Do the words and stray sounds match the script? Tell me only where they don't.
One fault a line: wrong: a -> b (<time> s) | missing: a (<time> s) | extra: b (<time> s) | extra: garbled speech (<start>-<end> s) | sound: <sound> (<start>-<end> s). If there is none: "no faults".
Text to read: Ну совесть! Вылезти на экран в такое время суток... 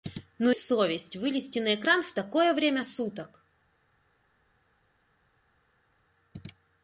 no faults